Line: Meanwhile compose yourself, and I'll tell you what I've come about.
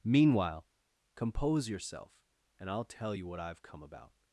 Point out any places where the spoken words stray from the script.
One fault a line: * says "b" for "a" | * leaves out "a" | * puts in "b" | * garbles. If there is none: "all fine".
all fine